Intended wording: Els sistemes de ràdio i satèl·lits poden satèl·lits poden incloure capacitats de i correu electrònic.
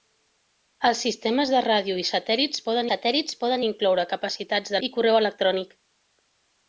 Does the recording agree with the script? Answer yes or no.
yes